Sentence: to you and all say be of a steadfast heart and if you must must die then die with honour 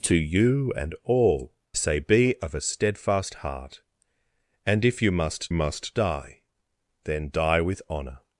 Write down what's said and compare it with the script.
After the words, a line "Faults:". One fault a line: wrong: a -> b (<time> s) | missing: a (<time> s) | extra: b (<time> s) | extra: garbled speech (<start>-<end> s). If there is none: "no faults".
to you and all say be of a steadfast heart and if you must must die then die with honour
Faults:
no faults